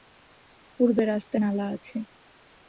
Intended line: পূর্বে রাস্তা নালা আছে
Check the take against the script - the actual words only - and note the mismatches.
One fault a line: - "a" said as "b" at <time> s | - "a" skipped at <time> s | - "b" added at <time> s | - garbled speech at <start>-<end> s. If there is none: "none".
none